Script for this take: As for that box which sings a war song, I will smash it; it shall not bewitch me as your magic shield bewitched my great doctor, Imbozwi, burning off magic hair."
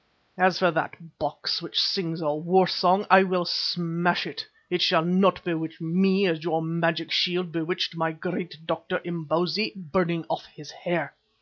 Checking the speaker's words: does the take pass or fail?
fail